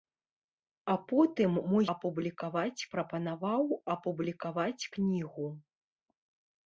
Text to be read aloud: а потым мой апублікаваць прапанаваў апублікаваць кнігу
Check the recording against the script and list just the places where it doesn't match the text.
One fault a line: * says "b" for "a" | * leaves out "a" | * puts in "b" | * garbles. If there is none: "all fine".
all fine